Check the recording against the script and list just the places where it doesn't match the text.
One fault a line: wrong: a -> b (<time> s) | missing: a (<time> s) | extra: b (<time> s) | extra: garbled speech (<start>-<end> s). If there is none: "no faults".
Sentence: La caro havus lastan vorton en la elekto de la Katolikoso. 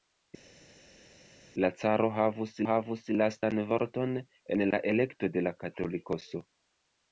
extra: havus (2.7 s)